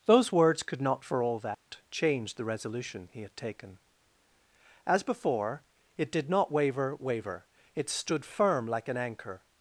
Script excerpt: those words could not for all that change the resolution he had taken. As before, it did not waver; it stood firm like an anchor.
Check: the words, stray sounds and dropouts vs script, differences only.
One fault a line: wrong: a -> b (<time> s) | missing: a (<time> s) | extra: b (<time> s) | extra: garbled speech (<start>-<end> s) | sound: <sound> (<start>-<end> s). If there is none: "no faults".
sound: dropout (1.5-1.7 s)
extra: waver (7.0 s)